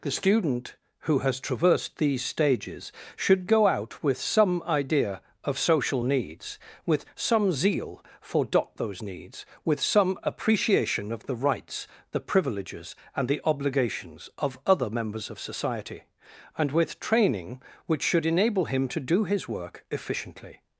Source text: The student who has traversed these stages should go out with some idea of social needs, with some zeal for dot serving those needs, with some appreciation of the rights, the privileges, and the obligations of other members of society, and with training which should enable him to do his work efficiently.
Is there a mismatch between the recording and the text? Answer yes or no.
yes